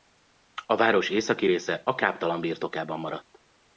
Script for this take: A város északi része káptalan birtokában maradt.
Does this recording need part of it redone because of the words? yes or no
yes